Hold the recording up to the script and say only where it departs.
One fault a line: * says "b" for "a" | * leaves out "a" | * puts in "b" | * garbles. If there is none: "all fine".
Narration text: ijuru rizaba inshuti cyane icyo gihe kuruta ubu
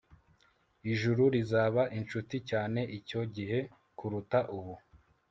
all fine